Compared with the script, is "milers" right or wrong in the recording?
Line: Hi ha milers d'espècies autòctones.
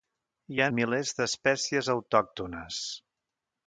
right